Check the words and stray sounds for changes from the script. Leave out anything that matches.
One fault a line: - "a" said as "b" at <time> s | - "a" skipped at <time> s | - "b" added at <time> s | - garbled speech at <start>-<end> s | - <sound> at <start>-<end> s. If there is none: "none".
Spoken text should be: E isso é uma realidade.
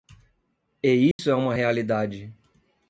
- dropout at 1.1-1.2 s